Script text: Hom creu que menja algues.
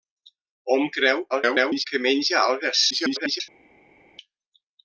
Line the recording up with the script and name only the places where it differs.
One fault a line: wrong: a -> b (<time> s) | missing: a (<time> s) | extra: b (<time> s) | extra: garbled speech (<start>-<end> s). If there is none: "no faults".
extra: garbled speech (1.3-1.9 s)
extra: garbled speech (2.9-3.4 s)